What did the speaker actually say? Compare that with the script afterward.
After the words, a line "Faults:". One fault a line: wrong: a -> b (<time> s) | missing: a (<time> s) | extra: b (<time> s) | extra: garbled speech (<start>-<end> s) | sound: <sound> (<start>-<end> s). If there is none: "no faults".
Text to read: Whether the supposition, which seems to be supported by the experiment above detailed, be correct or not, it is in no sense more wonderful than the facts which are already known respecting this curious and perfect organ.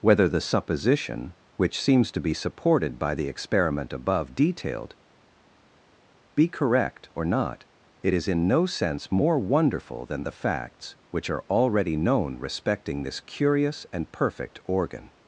Whether the supposition, which seems to be supported by the experiment above detailed, be correct or not, it is in no sense more wonderful than the facts which are already known respecting this curious and perfect organ.
Faults:
no faults